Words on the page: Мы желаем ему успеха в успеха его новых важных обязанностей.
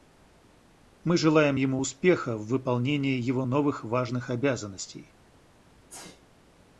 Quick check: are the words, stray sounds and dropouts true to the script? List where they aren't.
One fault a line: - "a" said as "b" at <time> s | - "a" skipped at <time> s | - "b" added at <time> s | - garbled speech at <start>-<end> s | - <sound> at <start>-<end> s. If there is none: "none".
- "успеха" said as "выполнении" at 2.5 s
- sneeze at 5.9-6.2 s